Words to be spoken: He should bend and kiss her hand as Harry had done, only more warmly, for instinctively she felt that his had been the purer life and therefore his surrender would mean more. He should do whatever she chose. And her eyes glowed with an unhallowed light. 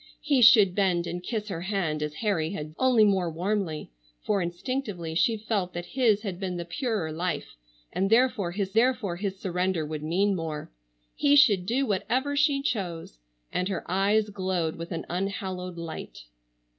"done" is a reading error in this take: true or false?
true